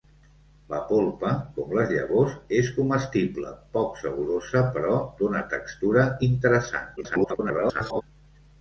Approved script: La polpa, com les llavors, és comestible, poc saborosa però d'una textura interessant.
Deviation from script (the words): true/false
true